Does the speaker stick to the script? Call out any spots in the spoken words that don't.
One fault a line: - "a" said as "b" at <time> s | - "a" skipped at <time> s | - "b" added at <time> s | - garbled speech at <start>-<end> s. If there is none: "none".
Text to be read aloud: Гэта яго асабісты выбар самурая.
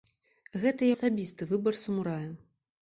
- "яго" skipped at 0.9 s